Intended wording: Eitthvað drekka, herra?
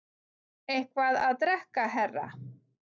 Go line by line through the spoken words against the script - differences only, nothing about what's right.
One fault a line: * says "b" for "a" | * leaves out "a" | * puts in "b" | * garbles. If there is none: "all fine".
* puts in "að"